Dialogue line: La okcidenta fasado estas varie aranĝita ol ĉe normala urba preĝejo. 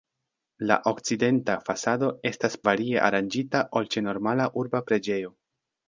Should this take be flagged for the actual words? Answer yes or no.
no